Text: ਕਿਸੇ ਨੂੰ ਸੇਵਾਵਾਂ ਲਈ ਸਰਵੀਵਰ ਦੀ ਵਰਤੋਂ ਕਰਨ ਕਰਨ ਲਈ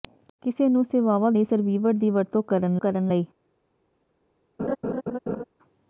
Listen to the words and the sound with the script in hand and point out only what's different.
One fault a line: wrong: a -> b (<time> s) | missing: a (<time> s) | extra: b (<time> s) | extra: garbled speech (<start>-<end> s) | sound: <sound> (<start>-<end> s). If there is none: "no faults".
sound: laugh (4.6-5.4 s)